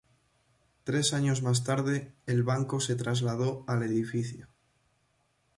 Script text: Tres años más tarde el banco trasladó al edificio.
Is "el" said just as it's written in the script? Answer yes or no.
yes